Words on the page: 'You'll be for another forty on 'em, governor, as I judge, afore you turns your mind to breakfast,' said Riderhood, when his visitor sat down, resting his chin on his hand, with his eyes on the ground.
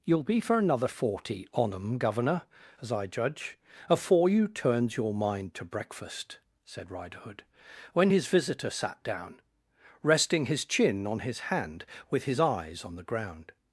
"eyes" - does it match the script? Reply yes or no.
yes